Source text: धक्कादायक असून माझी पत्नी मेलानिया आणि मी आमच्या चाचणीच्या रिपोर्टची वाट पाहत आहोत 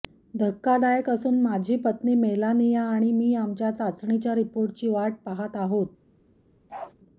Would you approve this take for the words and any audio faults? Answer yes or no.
no